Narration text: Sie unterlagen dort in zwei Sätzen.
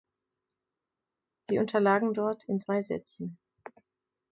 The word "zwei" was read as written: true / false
true